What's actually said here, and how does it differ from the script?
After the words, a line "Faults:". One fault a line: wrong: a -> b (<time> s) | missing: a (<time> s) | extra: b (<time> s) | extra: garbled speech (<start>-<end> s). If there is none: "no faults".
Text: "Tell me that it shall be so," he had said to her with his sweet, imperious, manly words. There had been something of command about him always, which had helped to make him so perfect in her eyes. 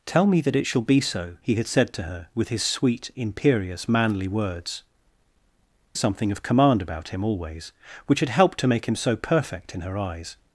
"Tell me that it shall be so," he had said to her with his sweet, imperious, manly words. Something of command about him always, which had helped to make him so perfect in her eyes.
Faults:
missing: There had been (4.8 s)